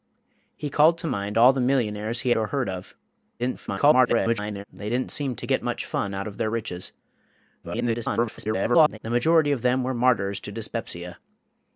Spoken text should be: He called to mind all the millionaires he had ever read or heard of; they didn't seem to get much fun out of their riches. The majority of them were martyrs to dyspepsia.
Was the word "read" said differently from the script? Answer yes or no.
yes